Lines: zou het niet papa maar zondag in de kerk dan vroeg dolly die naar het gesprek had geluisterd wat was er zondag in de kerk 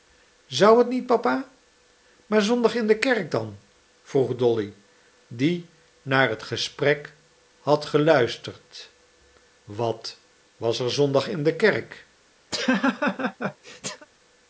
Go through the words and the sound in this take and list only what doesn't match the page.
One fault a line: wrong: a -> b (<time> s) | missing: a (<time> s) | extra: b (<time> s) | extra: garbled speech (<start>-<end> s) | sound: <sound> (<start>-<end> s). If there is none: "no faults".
sound: laugh (12.5-14.1 s)